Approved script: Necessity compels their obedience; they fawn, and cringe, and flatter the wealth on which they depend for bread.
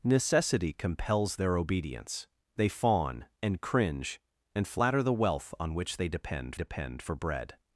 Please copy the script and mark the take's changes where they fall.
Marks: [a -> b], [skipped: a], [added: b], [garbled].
Necessity compels their obedience; they fawn, and cringe, and flatter the wealth on which they depend [added: depend] for bread.